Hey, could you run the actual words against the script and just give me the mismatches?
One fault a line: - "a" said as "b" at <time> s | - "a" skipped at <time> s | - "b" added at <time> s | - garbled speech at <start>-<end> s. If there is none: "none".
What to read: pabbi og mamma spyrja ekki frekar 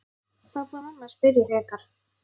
- "ekki" skipped at 1.4 s